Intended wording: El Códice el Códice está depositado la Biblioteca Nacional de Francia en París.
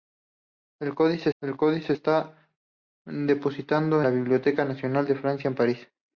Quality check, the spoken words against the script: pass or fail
pass